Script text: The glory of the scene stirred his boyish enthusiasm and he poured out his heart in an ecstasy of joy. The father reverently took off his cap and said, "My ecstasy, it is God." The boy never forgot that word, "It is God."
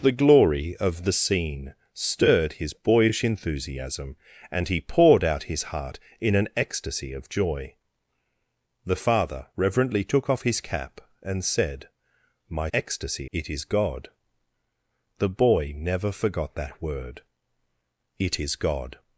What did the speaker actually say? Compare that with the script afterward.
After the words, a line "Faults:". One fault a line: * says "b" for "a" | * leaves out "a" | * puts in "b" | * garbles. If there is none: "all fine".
The glory of the scene stirred his boyish enthusiasm and he poured out his heart in an ecstasy of joy. The father reverently took off his cap and said, "My ecstasy, it is God." The boy never forgot that word, "It is God."
Faults:
all fine